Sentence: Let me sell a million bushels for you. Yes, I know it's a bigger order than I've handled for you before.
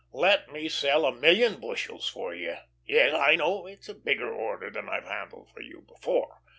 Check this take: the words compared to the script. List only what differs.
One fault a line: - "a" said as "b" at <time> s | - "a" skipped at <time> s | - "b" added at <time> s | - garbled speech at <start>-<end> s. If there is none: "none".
none